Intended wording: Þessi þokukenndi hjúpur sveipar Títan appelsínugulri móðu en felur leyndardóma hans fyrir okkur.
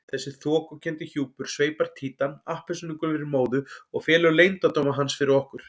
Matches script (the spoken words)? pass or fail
fail